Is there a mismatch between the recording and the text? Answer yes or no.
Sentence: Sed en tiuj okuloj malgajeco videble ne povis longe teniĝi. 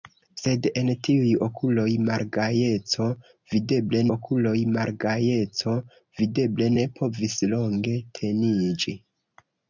yes